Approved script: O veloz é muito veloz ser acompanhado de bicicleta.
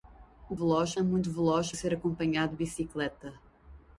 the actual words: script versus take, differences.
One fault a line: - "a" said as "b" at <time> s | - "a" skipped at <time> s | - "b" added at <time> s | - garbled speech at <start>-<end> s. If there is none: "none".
none